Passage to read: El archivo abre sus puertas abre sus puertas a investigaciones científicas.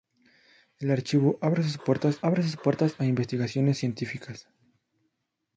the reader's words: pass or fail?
pass